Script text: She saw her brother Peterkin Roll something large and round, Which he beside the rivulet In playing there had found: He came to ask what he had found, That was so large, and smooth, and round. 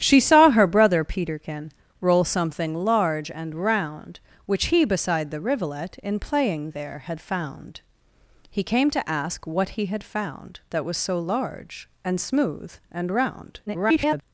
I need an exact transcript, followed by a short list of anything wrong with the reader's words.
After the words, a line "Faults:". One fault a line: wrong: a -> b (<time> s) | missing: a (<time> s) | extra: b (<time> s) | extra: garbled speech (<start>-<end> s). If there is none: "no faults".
She saw her brother Peterkin Roll something large and round, Which he beside the rivulet In playing there had found: He came to ask what he had found, That was so large, and smooth, and round. [garbled]
Faults:
extra: garbled speech (13.7-14.2 s)